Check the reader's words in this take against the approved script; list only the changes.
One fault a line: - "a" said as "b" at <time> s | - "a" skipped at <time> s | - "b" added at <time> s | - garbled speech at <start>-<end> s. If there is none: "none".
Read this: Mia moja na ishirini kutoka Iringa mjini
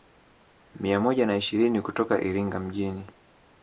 none